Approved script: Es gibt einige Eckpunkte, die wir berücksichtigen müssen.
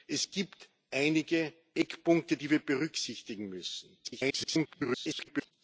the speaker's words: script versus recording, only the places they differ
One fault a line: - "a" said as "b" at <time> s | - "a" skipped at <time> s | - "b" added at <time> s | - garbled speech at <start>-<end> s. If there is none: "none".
- garbled speech at 4.0-5.5 s